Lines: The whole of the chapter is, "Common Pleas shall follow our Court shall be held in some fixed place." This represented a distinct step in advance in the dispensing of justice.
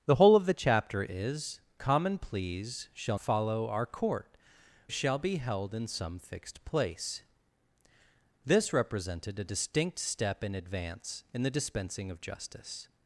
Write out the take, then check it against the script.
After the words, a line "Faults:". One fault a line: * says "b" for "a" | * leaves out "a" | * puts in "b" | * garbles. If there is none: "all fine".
The whole of the chapter is, "Common Pleas shall follow our Court shall be held in some fixed place." This represented a distinct step in advance in the dispensing of justice.
Faults:
all fine